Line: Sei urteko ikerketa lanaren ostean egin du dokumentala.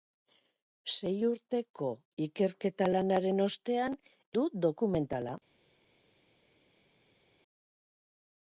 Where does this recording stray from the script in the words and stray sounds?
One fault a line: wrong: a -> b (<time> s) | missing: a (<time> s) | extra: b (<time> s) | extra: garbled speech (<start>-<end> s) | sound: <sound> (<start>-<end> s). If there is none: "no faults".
missing: egin (4.0 s)